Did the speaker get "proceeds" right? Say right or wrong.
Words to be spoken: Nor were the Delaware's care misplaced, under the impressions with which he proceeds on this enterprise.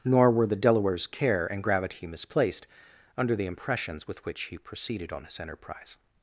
wrong